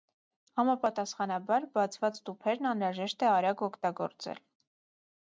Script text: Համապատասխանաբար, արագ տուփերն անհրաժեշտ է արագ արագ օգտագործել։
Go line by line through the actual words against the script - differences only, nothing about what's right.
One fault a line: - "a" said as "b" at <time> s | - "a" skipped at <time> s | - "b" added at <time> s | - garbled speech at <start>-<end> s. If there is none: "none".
- "արագ" said as "բացված" at 1.8 s
- "արագ" skipped at 3.6 s